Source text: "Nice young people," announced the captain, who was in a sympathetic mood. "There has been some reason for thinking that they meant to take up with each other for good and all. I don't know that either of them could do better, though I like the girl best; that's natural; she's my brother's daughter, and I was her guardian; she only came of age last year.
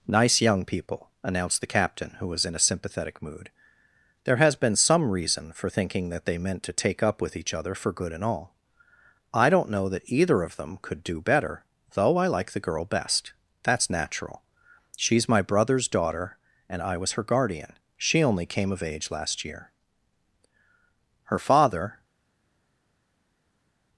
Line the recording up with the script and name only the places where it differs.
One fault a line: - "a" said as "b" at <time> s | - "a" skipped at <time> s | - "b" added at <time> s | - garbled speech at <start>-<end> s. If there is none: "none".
- "Her father" added at 21.2 s